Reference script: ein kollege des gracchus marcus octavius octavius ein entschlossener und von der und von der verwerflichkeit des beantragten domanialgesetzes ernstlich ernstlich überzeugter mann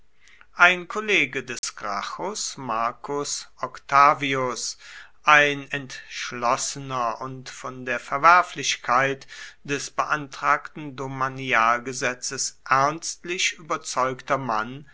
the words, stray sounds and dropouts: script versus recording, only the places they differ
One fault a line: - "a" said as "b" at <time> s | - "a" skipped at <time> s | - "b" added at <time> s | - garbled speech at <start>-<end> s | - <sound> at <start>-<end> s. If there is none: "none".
- dropout at 1.6-1.6 s
- "octavius" skipped at 4.8 s
- "und von der" skipped at 8.0 s
- "ernstlich" skipped at 13.5 s